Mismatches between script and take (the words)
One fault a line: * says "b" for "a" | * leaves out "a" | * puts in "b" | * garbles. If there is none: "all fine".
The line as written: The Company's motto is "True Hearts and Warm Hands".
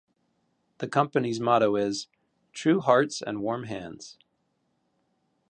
all fine